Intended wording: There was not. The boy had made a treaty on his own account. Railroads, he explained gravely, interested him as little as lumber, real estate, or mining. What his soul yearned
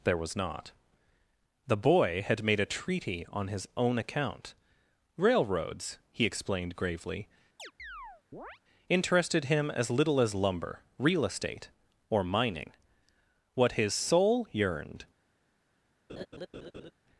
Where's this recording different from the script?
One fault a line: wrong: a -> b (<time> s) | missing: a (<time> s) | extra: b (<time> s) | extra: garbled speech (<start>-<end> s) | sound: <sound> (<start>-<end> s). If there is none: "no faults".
sound: chirp (7.6-8.6 s)
sound: laugh (16.1-16.9 s)